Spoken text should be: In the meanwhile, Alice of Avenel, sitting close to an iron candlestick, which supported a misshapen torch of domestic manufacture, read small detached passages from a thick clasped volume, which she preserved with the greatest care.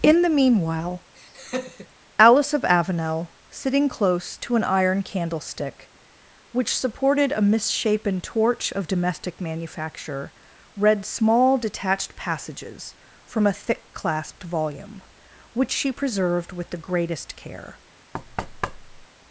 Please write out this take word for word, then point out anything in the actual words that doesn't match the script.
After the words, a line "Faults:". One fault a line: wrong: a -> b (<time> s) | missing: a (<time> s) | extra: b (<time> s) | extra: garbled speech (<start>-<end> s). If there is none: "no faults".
In the meanwhile, Alice of Avenel, sitting close to an iron candlestick, which supported a misshapen torch of domestic manufacture, read small detached passages from a thick clasped volume, which she preserved with the greatest care.
Faults:
no faults